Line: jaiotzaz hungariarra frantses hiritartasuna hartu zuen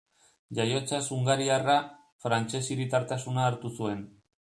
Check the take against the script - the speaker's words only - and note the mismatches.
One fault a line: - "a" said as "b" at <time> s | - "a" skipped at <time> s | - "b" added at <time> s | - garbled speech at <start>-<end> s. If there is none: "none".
none